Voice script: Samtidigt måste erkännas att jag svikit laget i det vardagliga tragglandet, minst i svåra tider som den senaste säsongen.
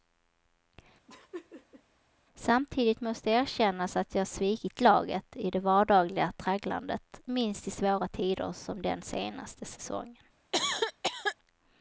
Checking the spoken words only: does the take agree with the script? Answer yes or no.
yes